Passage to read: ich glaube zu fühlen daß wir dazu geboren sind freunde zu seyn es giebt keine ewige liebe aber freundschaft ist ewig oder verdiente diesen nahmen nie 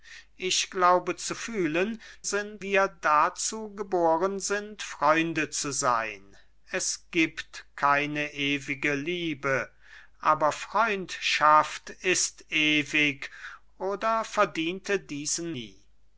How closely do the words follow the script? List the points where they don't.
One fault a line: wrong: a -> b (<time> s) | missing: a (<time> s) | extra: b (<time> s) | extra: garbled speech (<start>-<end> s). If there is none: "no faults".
wrong: daß -> sind (2.2 s)
missing: nahmen (15.6 s)